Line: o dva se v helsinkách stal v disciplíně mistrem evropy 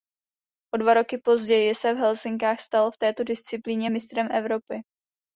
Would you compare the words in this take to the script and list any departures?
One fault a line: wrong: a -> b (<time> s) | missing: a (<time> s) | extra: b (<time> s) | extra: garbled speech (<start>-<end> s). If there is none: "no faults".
extra: roky později (0.9 s)
extra: této (3.0 s)